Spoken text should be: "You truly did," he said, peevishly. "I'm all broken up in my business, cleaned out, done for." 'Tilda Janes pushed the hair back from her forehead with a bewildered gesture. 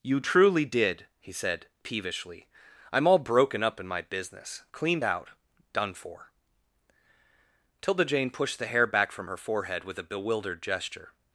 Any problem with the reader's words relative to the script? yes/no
yes